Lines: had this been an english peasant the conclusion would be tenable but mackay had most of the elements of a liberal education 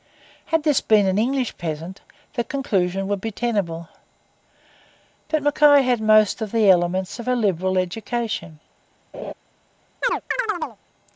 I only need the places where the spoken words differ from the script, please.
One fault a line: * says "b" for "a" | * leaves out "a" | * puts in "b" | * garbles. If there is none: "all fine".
all fine